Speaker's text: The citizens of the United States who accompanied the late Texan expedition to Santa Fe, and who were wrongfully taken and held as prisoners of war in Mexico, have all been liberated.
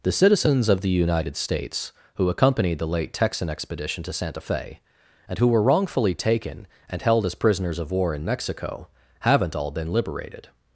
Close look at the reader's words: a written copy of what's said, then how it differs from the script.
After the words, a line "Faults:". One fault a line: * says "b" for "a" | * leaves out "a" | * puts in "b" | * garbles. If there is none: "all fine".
The citizens of the United States who accompanied the late Texan expedition to Santa Fe, and who were wrongfully taken and held as prisoners of war in Mexico, haven't all been liberated.
Faults:
* says "haven't" for "have"